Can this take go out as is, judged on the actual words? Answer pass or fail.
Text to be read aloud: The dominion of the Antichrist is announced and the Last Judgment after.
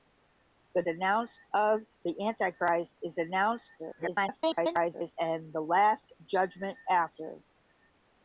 fail